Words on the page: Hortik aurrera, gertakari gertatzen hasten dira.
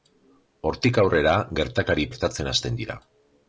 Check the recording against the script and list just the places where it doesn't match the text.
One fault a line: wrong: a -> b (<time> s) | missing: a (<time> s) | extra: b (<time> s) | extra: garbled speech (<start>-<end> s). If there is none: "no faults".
no faults